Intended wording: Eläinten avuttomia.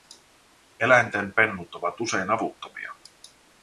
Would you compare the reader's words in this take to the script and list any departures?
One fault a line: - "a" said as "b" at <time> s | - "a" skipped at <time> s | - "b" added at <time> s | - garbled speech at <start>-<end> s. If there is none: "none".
- "pennut ovat usein" added at 1.3 s